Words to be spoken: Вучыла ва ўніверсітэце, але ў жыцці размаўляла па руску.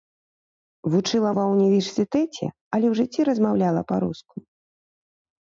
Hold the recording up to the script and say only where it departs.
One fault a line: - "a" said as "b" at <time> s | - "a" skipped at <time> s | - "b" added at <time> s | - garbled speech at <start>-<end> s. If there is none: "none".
none